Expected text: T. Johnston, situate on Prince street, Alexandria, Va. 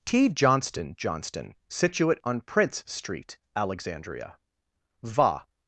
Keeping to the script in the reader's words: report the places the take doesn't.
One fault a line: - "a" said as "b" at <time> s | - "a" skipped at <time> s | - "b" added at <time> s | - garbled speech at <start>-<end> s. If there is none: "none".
- "Johnston" added at 1.0 s